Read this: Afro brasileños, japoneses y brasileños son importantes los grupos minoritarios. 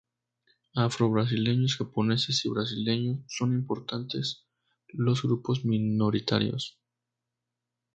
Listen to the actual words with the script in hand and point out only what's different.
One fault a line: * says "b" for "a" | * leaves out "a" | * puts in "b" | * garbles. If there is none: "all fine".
all fine